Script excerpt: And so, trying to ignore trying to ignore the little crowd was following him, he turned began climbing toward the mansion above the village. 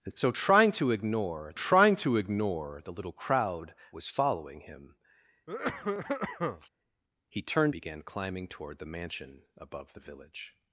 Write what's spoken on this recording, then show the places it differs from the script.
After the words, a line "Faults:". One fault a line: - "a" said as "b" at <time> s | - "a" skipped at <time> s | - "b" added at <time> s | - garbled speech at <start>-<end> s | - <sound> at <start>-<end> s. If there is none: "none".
And so, trying to ignore trying to ignore the little crowd was following him, he turned began climbing toward the mansion above the village.
Faults:
- cough at 5.5-6.7 s